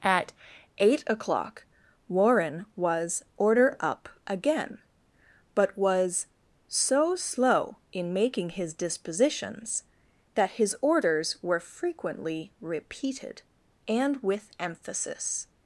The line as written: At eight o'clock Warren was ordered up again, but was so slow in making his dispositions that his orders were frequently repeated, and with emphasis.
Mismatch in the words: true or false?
true